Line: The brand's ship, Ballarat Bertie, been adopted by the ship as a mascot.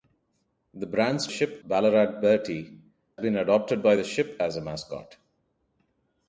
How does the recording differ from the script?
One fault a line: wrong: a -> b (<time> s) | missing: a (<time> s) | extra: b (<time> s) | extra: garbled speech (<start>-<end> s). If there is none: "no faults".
no faults